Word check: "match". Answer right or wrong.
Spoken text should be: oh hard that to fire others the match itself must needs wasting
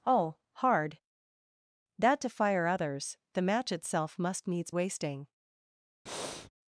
right